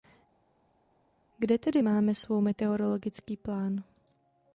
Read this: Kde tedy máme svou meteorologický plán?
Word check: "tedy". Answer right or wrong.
right